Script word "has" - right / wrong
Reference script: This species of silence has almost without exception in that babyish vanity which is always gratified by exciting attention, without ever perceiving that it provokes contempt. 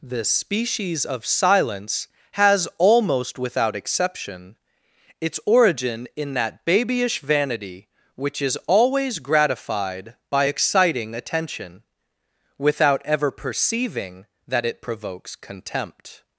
right